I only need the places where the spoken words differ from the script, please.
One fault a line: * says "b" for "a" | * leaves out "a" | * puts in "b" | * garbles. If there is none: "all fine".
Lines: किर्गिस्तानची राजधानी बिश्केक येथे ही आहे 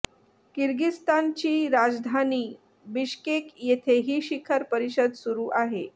* puts in "शिखर परिषद सुरू"